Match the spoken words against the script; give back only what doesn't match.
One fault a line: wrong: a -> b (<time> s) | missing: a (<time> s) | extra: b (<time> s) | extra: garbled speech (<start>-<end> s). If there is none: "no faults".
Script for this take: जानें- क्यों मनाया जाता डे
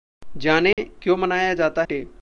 no faults